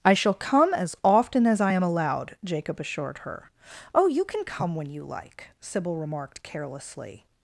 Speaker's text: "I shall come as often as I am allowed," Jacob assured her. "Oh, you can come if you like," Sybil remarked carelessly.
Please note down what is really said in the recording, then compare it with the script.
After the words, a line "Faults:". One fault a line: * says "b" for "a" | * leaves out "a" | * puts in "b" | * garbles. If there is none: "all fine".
"I shall come as often as I am allowed," Jacob assured her. "Oh, you can come when you like," Sybil remarked carelessly.
Faults:
* says "when" for "if"